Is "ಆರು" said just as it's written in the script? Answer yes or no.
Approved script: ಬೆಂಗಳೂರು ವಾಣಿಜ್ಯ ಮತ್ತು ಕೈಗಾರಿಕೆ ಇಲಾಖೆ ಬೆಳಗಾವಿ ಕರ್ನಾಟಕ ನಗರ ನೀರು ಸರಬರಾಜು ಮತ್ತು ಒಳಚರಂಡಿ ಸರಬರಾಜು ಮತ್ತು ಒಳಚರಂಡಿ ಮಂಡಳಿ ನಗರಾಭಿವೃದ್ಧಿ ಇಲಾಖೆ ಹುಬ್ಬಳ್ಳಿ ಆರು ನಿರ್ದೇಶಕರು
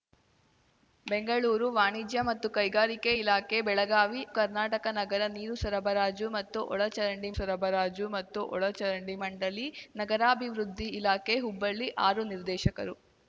yes